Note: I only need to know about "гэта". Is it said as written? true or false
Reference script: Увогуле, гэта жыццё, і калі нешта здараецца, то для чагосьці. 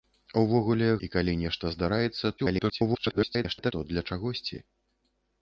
false